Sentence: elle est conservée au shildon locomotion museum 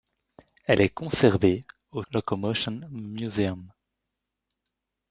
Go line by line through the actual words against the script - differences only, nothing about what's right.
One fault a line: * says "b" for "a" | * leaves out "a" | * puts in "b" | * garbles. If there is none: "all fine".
* leaves out "shildon"